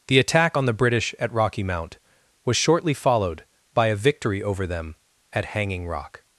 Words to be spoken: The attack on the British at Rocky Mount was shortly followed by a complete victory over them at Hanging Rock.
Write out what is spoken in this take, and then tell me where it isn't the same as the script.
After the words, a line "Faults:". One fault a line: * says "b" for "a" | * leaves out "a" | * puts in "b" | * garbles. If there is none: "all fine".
The attack on the British at Rocky Mount was shortly followed by a victory over them at Hanging Rock.
Faults:
* leaves out "complete"